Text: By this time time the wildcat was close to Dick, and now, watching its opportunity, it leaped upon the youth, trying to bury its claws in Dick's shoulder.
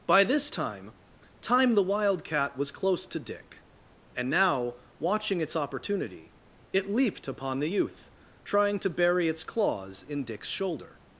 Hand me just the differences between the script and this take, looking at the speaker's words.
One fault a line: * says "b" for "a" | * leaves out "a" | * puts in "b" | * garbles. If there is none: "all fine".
all fine